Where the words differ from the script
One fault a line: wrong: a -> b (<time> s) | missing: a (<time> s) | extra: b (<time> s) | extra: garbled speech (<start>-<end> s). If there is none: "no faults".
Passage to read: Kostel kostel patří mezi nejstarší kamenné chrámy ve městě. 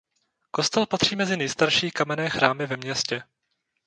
missing: kostel (0.9 s)